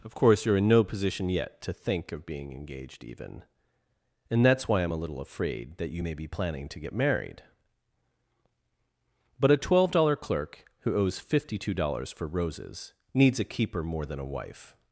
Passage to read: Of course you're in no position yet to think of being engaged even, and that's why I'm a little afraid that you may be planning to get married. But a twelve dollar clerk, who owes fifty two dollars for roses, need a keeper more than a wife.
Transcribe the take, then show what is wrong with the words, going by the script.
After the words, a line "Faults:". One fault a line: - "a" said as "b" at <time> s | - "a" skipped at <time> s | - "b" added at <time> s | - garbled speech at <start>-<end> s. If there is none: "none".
Of course you're in no position yet to think of being engaged even, and that's why I'm a little afraid that you may be planning to get married. But a twelve dollar clerk, who owes fifty two dollars for roses, needs a keeper more than a wife.
Faults:
- "need" said as "needs" at 13.1 s